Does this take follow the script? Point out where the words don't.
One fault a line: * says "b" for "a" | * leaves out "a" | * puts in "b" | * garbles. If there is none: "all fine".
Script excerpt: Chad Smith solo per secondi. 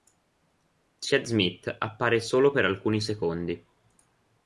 * puts in "appare"
* puts in "alcuni"